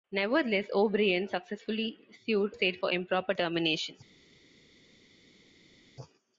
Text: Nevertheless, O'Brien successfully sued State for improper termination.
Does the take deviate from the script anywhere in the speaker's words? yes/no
no